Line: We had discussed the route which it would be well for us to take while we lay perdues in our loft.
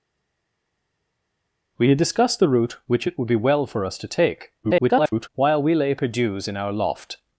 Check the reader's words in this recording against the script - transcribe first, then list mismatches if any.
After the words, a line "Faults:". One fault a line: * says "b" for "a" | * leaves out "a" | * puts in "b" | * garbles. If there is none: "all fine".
We had discussed the route which it would be well for us to take [garbled] while we lay perdues in our loft.
Faults:
* garbles